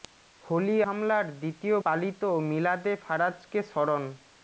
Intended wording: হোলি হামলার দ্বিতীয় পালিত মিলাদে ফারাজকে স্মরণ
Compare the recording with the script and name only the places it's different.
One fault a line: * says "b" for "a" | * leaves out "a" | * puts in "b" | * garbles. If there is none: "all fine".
all fine